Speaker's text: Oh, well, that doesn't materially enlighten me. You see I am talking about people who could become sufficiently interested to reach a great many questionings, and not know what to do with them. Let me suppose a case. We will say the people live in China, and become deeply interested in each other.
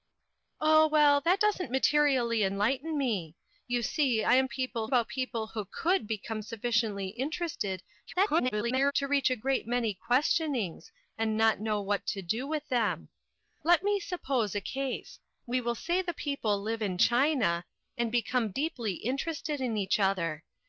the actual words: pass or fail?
fail